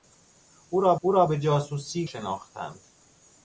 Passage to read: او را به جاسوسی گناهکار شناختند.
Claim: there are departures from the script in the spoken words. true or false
true